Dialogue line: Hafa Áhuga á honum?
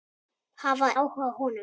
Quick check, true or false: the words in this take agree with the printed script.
true